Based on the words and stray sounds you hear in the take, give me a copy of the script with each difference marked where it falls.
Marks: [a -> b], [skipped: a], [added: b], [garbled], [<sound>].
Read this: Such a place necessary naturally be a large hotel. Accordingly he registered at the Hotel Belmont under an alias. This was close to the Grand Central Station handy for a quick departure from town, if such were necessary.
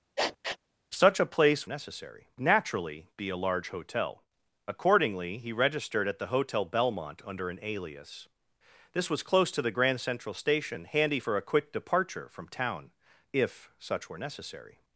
[sniff] Such a place necessary naturally be a large hotel. Accordingly he registered at the Hotel Belmont under an alias. This was close to the Grand Central Station handy for a quick departure from town, if such were necessary.